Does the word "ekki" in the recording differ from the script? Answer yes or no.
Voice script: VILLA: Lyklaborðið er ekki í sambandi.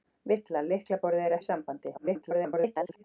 yes